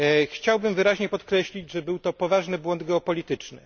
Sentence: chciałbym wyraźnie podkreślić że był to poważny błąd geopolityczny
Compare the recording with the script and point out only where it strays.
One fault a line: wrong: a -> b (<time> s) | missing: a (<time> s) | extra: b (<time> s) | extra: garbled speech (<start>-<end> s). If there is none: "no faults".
no faults